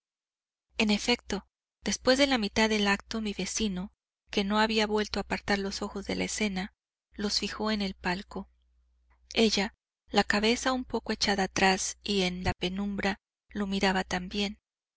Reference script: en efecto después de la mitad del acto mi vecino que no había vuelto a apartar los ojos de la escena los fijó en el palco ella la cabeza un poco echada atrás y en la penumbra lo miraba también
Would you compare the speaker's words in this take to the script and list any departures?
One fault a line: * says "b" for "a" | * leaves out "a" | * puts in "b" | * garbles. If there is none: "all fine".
all fine